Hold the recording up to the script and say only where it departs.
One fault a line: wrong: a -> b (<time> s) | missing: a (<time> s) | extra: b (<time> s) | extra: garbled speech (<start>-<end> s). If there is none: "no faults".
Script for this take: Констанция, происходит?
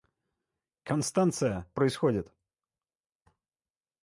no faults